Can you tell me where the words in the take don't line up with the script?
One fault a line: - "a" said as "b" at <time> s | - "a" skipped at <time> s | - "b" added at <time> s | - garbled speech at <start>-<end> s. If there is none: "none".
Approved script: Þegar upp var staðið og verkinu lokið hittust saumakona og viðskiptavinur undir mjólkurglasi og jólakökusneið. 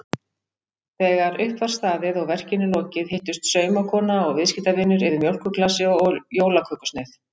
- "undir" said as "yfir" at 5.1 s